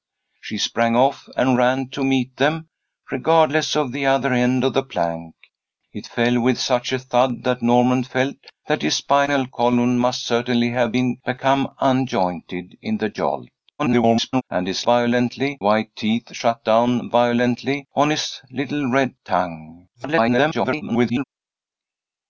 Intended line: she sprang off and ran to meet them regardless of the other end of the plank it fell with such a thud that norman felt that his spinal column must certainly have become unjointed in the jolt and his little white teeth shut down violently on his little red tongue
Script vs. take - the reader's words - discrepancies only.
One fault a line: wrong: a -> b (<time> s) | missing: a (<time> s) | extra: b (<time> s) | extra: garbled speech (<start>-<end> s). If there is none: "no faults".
extra: garbled speech (13.8-14.4 s)
wrong: little -> violently (14.8 s)
extra: garbled speech (19.9-21.2 s)